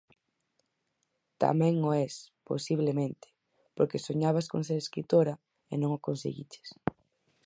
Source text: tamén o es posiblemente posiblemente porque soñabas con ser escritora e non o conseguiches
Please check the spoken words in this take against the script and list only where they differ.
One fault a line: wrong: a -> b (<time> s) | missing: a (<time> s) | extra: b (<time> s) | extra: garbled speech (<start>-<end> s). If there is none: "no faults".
missing: posiblemente (3.3 s)